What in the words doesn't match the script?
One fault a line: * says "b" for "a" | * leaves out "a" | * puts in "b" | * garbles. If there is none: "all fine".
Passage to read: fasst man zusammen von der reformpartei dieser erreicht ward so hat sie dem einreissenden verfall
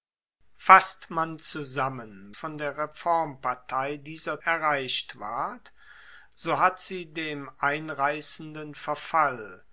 all fine